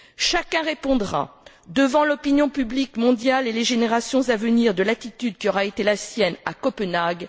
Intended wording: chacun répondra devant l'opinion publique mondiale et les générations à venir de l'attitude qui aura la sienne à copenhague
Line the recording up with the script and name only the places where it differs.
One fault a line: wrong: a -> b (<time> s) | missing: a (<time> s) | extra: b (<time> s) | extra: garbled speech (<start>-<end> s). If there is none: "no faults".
extra: été (5.7 s)